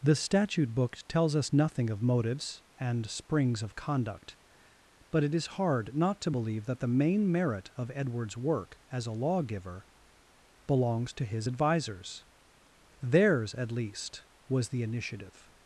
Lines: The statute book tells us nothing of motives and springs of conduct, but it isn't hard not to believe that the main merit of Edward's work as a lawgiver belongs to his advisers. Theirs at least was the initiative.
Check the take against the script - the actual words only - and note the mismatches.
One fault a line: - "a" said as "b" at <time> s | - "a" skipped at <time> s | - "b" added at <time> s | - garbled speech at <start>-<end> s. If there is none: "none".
- "isn't" said as "is" at 5.3 s